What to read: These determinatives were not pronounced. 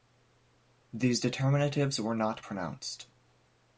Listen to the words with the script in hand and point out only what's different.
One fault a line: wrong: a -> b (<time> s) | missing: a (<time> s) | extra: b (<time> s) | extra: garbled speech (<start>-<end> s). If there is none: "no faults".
no faults